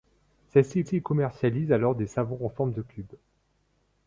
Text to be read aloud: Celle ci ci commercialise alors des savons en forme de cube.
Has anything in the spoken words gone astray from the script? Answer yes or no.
no